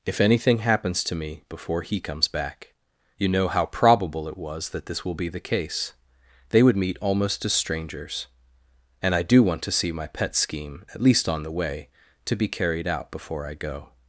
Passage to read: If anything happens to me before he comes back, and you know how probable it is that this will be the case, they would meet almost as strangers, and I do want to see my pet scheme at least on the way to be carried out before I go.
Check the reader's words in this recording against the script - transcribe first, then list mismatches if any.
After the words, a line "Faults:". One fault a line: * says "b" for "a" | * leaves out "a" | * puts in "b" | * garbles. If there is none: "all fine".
If anything happens to me before he comes back, you know how probable it was that this will be the case, they would meet almost as strangers, and I do want to see my pet scheme at least on the way to be carried out before I go.
Faults:
* leaves out "and"
* says "was" for "is"